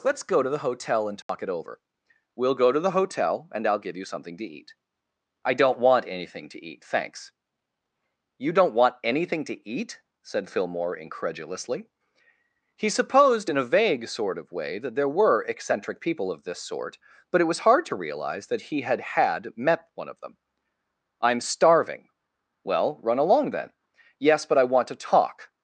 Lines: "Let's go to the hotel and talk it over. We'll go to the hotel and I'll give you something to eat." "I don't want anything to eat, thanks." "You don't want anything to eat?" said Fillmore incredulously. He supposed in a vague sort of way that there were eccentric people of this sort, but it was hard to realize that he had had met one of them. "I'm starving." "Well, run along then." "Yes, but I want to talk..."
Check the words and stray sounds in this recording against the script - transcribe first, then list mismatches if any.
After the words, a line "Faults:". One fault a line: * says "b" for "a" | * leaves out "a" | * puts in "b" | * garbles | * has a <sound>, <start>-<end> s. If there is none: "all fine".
"Let's go to the hotel and talk it over. We'll go to the hotel and I'll give you something to eat." "I don't want anything to eat, thanks." "You don't want anything to eat?" said Fillmore incredulously. He supposed in a vague sort of way that there were eccentric people of this sort, but it was hard to realize that he had had met one of them. "I'm starving." "Well, run along then." "Yes, but I want to talk..."
Faults:
* has a dropout, 1.2-1.3 s